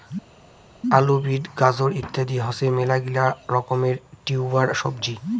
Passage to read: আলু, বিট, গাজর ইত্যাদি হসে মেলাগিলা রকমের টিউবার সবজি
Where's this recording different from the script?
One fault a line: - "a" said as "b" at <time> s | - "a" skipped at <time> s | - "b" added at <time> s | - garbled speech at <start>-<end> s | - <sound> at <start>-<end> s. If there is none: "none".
none